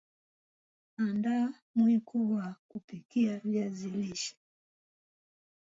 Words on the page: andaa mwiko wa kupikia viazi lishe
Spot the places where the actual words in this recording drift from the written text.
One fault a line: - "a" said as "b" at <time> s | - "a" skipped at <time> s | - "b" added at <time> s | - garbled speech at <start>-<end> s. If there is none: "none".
none